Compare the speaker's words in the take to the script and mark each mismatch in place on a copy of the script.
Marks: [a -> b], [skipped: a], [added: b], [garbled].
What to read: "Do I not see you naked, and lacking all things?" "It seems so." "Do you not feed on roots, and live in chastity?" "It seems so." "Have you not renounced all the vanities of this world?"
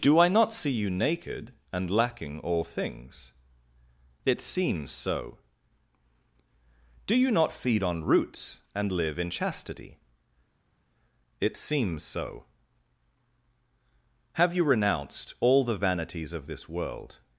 "Do I not see you naked, and lacking all things?" "It seems so." "Do you not feed on roots, and live in chastity?" "It seems so." "Have you [skipped: not] renounced all the vanities of this world?"